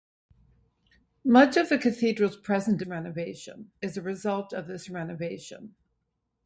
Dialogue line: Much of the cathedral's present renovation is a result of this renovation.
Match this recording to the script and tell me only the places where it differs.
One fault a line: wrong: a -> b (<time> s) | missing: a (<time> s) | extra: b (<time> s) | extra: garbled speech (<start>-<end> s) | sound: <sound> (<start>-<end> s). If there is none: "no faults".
no faults